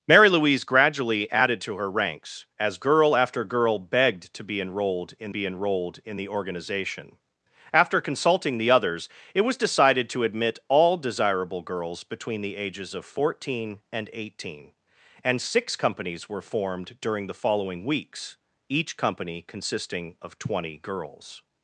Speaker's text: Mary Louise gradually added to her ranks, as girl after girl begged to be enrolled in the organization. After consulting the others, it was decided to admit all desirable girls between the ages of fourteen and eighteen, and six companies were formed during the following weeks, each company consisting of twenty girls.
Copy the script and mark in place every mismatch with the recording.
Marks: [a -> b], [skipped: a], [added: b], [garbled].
Mary Louise gradually added to her ranks, as girl after girl begged to be enrolled in [added: be enrolled in] the organization. After consulting the others, it was decided to admit all desirable girls between the ages of fourteen and eighteen, and six companies were formed during the following weeks, each company consisting of twenty girls.